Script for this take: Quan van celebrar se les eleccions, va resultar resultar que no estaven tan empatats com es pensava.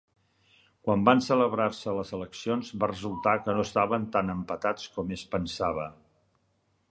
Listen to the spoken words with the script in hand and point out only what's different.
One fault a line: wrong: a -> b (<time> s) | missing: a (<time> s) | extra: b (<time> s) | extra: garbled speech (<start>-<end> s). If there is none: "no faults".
missing: resultar (3.4 s)